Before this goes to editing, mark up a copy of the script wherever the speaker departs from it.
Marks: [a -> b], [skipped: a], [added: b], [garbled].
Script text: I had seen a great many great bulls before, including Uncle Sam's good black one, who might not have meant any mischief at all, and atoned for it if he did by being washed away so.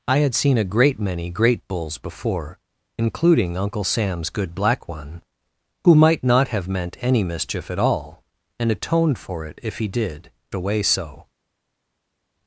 I had seen a great many great bulls before, including Uncle Sam's good black one, who might not have meant any mischief at all, and atoned for it if he did [skipped: by being washed] away so.